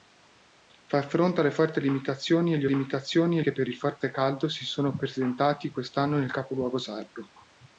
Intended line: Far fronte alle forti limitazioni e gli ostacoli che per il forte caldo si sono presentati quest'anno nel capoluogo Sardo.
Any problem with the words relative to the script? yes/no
yes